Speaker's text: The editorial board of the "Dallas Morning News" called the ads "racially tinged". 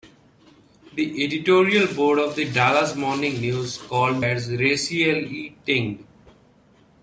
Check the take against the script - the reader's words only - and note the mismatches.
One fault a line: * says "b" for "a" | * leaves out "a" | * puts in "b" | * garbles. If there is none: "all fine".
* leaves out "the"